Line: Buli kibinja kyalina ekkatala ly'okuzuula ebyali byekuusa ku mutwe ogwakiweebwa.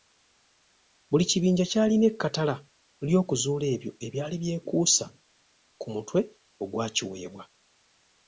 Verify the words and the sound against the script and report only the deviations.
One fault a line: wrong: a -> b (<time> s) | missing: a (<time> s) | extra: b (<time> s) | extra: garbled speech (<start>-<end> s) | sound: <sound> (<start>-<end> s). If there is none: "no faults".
extra: ebyo (3.7 s)